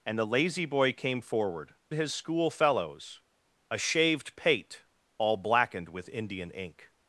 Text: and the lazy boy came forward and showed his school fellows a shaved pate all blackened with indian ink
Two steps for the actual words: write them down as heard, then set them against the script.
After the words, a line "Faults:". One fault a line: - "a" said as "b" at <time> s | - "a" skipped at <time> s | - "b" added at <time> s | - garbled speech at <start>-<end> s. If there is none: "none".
and the lazy boy came forward his school fellows a shaved pate all blackened with indian ink
Faults:
- "and showed" skipped at 1.8 s